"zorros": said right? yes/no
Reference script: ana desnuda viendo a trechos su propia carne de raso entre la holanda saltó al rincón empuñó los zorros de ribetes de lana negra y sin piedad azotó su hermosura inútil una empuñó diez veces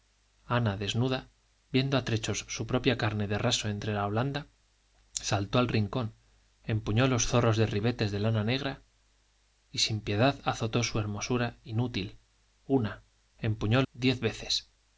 yes